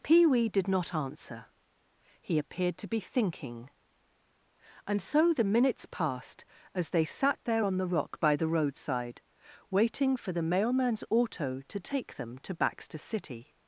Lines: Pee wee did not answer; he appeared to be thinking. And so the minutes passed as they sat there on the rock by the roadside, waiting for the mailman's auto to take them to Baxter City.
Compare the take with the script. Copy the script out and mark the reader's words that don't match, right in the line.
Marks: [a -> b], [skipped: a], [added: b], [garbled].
Pee wee did not answer; he appeared to be thinking. And so the minutes passed as they sat there on the rock by the roadside, waiting for the mailman's auto to take them to Baxter City.